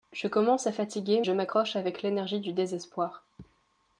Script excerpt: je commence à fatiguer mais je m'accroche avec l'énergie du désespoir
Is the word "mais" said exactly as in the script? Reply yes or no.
no